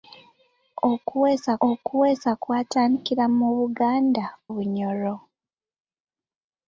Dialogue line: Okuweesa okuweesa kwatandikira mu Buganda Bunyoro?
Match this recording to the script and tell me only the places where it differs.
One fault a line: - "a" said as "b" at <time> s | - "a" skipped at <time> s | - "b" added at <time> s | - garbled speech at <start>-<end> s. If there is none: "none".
none